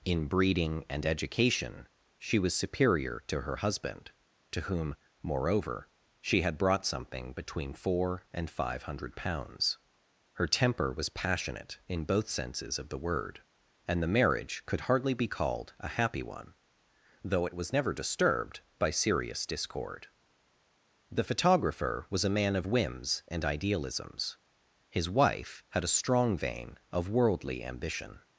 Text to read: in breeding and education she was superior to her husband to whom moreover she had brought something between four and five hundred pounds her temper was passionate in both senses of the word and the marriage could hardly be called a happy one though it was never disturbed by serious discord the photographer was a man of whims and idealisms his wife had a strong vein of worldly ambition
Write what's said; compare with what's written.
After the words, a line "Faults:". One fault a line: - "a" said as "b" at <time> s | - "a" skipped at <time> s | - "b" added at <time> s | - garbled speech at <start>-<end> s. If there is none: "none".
in breeding and education she was superior to her husband to whom moreover she had brought something between four and five hundred pounds her temper was passionate in both senses of the word and the marriage could hardly be called a happy one though it was never disturbed by serious discord the photographer was a man of whims and idealisms his wife had a strong vein of worldly ambition
Faults:
none